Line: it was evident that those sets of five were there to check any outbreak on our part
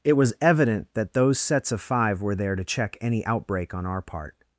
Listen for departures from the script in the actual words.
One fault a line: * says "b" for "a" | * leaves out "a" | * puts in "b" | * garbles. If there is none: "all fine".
all fine